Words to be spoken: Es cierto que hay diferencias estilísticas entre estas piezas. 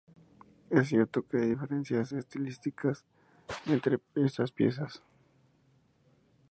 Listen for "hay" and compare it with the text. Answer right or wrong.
right